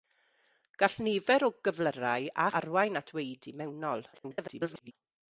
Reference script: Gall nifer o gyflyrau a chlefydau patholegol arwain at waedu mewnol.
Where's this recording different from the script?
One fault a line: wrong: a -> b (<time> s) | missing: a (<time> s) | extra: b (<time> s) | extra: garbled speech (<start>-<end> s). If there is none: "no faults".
missing: chlefydau patholegol (2.5 s)
extra: garbled speech (4.1-4.9 s)